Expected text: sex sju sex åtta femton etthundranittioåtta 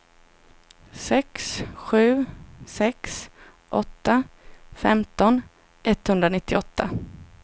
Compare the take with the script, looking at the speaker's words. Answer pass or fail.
pass